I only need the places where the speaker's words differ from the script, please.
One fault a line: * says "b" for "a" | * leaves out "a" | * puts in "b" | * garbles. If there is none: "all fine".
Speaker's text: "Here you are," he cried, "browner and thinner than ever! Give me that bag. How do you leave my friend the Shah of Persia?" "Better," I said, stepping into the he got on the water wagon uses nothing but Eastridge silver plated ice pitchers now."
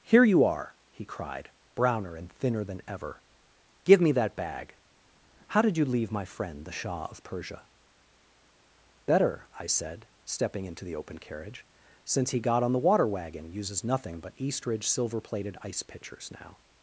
* says "did" for "do"
* puts in "open carriage since"